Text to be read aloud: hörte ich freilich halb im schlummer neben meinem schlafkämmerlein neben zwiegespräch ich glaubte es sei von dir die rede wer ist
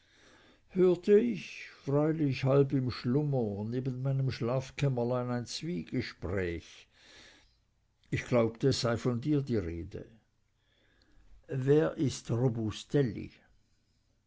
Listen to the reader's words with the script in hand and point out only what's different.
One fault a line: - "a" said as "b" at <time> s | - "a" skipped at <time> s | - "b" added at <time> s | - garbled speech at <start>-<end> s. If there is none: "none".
- "neben" said as "ein" at 5.3 s